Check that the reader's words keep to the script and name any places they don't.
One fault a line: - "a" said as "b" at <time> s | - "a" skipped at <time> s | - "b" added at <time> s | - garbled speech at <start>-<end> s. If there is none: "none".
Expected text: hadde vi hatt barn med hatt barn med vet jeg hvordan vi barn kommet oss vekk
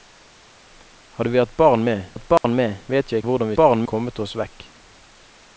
none